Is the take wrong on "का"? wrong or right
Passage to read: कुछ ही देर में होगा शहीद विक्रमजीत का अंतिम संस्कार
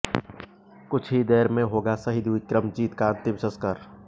right